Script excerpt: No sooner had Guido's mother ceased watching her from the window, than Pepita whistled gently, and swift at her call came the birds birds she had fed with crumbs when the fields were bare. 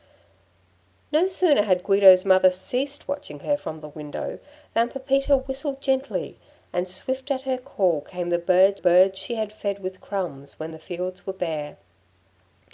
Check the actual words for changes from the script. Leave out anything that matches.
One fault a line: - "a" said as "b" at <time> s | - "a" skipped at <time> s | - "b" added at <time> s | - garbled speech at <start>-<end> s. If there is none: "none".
none